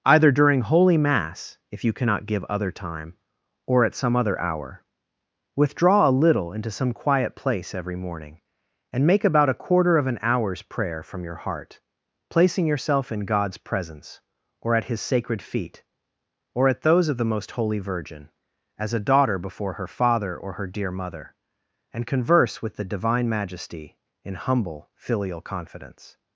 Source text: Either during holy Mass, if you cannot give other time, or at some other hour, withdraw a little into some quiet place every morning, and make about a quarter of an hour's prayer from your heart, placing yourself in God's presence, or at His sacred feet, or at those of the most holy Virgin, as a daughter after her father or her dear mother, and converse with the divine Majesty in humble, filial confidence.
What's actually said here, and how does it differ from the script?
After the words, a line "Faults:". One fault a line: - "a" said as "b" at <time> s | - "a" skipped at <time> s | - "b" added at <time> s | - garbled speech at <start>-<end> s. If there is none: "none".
Either during holy Mass, if you cannot give other time, or at some other hour, withdraw a little into some quiet place every morning, and make about a quarter of an hour's prayer from your heart, placing yourself in God's presence, or at His sacred feet, or at those of the most holy Virgin, as a daughter before her father or her dear mother, and converse with the divine Majesty in humble, filial confidence.
Faults:
- "after" said as "before" at 19.4 s